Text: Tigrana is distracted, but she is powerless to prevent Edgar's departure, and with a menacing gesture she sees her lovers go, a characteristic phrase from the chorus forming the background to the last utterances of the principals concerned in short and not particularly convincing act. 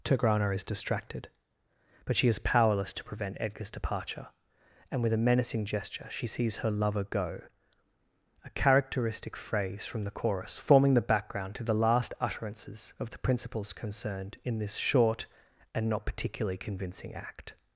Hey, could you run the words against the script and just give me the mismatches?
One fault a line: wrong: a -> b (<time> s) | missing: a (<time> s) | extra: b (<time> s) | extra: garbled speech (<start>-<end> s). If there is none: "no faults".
wrong: lovers -> lover (6.7 s)
extra: this (14.6 s)